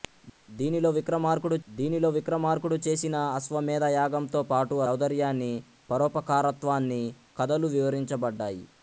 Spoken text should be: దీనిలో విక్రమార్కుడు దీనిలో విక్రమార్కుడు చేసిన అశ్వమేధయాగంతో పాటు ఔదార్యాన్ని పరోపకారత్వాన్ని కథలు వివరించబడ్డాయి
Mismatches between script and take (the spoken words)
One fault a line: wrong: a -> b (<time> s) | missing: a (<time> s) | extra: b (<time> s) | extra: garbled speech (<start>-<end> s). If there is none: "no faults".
no faults